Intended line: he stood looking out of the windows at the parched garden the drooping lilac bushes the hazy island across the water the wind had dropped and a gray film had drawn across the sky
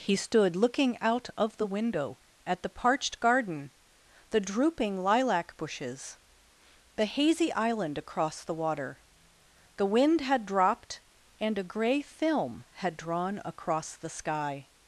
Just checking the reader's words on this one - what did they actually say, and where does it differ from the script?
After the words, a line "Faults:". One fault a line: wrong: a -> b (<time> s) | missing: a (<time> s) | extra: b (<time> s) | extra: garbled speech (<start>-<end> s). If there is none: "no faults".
he stood looking out of the window at the parched garden the drooping lilac bushes the hazy island across the water the wind had dropped and a gray film had drawn across the sky
Faults:
wrong: windows -> window (1.7 s)